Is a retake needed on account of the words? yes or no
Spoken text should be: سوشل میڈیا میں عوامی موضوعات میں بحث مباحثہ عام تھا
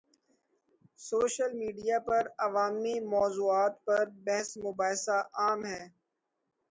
yes